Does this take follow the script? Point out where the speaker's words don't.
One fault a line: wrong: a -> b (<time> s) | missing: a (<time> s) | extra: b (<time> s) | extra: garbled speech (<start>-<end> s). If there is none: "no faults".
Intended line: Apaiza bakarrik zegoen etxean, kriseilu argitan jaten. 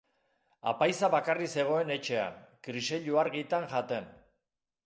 no faults